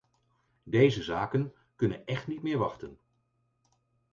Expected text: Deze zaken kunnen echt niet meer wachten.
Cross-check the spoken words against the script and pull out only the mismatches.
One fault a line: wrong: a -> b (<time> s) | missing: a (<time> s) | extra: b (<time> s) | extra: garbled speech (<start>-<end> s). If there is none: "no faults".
no faults